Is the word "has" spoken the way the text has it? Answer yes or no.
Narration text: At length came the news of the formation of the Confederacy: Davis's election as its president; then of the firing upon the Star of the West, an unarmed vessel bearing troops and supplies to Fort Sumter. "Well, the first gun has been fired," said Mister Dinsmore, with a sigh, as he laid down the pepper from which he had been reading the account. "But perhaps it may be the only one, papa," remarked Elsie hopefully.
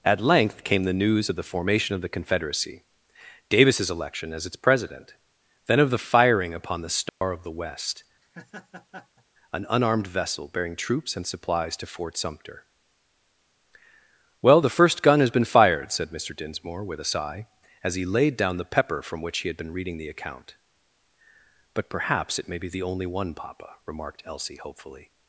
yes